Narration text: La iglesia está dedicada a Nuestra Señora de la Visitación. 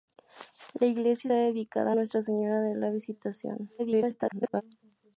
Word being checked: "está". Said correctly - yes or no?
no